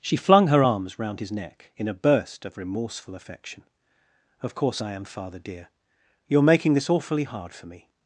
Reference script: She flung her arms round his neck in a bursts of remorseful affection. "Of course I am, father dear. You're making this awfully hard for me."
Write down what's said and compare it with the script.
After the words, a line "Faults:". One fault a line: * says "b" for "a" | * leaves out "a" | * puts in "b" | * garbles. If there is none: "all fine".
She flung her arms round his neck in a burst of remorseful affection. "Of course I am, father dear. You're making this awfully hard for me."
Faults:
* says "burst" for "bursts"